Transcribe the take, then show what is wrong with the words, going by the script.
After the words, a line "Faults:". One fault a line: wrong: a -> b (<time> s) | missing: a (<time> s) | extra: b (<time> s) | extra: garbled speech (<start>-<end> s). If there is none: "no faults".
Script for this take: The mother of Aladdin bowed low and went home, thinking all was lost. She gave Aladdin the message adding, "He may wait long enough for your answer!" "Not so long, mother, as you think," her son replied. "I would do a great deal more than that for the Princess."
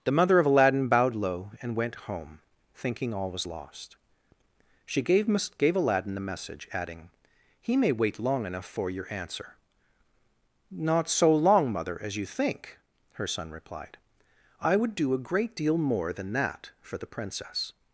The mother of Aladdin bowed low and went home, thinking all was lost. She gave gave Aladdin the message adding, "He may wait long enough for your answer!" "Not so long, mother, as you think," her son replied. "I would do a great deal more than that for the Princess."
Faults:
extra: gave (5.6 s)